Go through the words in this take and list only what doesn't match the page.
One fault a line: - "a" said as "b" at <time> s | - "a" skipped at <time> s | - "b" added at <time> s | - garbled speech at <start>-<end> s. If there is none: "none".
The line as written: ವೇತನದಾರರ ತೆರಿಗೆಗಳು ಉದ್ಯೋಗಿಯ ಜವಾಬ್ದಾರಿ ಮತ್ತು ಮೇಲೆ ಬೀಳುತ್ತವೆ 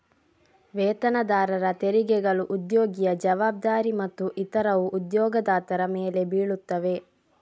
- "ಇತರವು ಉದ್ಯೋಗದಾತರ" added at 4.4 s